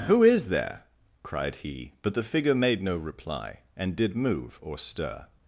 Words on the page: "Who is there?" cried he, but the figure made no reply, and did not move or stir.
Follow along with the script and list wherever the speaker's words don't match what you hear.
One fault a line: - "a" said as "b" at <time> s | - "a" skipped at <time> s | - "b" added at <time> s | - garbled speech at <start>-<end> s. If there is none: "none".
- "not" skipped at 4.2 s